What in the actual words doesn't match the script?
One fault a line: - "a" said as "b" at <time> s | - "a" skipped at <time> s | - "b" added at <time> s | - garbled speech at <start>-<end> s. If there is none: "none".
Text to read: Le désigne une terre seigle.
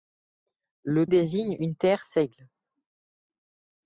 none